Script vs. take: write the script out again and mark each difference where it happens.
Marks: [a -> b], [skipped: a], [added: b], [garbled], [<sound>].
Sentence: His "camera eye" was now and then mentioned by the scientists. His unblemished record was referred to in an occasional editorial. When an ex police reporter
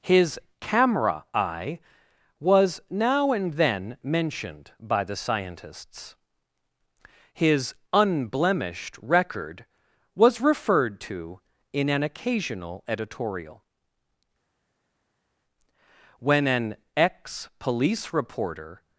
His "camera eye" was now and then mentioned by the scientists. His unblemished record was referred to in an occasional editorial. When an ex police reporter